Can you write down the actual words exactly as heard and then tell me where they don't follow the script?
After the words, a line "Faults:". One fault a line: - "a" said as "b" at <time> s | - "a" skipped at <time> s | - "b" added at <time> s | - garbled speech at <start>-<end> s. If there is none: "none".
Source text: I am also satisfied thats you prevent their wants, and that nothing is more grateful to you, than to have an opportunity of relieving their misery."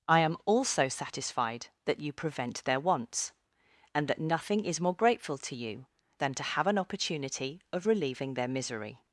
I am also satisfied that you prevent their wants, and that nothing is more grateful to you, than to have an opportunity of relieving their misery."
Faults:
- "thats" said as "that" at 1.9 s